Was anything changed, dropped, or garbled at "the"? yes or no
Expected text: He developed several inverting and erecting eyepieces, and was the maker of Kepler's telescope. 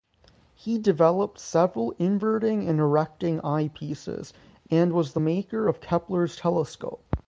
no